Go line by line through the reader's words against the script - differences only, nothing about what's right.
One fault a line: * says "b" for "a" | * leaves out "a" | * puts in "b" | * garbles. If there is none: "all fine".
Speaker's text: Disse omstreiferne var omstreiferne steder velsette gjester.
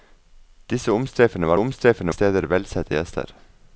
all fine